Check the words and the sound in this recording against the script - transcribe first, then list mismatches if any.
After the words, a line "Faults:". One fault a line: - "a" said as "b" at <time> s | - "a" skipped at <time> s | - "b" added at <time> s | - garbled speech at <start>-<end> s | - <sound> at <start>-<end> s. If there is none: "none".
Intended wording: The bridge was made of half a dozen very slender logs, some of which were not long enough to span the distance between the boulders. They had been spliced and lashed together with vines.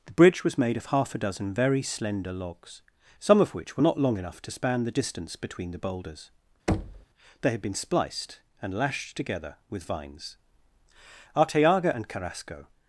The bridge was made of half a dozen very slender logs, some of which were not long enough to span the distance between the boulders. They had been spliced and lashed together with vines. Arteaga and Carrasco
Faults:
- thud at 6.7-7.1 s
- "Arteaga and Carrasco" added at 11.3 s